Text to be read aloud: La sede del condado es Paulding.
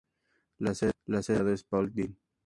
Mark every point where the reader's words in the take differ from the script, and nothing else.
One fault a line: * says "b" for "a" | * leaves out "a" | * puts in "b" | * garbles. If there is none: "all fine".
all fine